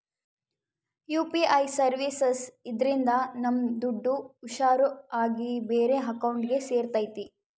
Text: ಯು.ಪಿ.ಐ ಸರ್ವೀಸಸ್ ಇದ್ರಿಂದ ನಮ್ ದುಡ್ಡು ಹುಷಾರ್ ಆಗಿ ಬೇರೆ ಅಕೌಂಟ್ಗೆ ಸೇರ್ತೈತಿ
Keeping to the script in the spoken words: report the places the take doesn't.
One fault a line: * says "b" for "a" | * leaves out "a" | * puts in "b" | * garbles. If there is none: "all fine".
all fine